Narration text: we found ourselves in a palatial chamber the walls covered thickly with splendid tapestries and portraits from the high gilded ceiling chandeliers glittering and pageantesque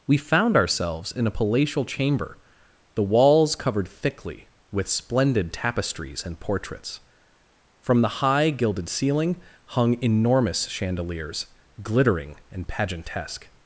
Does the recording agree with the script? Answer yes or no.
no